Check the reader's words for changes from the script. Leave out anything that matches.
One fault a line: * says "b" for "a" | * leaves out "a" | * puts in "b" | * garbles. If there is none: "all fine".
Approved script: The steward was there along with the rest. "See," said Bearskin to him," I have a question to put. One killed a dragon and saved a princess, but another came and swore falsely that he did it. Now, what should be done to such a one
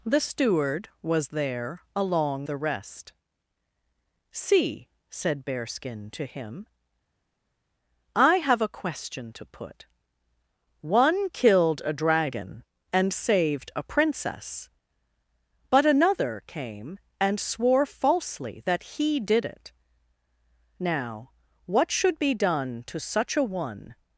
* leaves out "with"